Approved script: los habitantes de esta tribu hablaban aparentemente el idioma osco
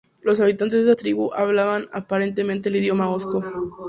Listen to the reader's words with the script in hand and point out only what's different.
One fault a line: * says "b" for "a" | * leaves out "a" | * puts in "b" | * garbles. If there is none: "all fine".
all fine